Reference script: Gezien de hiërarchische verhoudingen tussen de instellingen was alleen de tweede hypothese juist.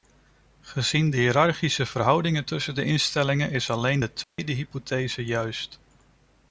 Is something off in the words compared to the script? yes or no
yes